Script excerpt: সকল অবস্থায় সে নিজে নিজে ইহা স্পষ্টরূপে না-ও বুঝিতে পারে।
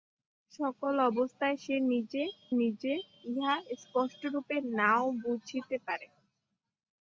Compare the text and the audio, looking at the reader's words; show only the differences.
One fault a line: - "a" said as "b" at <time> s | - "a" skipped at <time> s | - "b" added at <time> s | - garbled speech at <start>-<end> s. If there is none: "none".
none